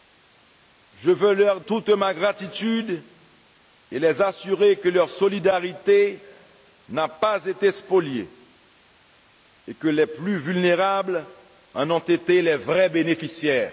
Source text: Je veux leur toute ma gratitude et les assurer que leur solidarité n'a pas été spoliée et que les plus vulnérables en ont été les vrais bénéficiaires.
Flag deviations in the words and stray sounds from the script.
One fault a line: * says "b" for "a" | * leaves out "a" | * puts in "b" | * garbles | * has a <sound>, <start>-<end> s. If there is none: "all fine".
all fine